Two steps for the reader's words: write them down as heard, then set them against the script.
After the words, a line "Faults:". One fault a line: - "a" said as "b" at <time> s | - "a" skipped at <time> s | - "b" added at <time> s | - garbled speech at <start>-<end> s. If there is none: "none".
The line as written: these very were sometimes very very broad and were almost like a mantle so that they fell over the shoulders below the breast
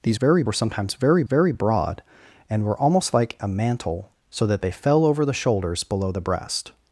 these very were sometimes very very broad and were almost like a mantle so that they fell over the shoulders below the breast
Faults:
none